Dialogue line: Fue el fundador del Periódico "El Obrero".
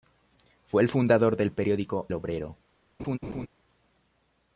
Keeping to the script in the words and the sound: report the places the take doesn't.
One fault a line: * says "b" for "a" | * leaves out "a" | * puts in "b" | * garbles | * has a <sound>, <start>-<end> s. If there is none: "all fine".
* leaves out "El"
* has a laugh, 3.0-3.5 s